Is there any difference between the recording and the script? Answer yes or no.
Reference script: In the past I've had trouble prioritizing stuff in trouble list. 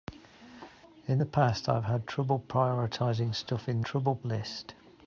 no